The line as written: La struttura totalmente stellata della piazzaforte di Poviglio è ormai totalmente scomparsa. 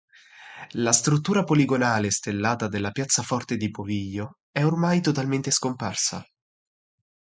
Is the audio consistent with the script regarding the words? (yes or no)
no